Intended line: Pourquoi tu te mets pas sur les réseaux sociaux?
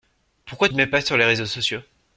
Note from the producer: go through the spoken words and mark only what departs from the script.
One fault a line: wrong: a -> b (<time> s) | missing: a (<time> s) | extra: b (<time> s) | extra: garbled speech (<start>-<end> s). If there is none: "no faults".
missing: tu (0.7 s)